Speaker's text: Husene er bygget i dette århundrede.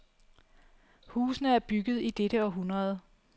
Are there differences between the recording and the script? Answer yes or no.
no